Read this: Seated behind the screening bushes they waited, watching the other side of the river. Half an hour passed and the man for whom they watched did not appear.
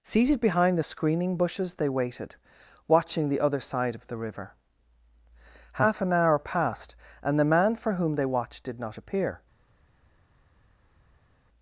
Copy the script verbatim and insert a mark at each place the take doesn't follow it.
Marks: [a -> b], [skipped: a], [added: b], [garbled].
Seated behind the screening bushes they waited, watching the other side of the river. Half an hour passed and the man for whom they watched did not appear.